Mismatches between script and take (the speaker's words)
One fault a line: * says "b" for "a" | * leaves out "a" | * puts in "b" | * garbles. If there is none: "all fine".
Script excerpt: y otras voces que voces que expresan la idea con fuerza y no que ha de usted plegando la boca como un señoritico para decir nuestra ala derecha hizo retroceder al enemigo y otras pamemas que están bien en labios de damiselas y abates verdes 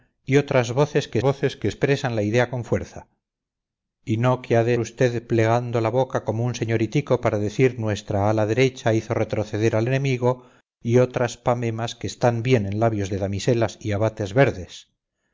all fine